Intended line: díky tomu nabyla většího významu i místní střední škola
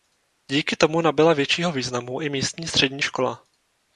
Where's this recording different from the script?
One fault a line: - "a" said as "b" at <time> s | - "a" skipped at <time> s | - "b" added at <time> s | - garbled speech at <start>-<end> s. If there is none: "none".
none